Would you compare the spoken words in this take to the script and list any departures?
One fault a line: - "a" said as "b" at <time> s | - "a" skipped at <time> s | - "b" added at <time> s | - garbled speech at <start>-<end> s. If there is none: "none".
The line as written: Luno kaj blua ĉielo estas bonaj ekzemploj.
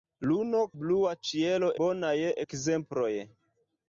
- "kaj" skipped at 0.6 s
- "estas" skipped at 1.7 s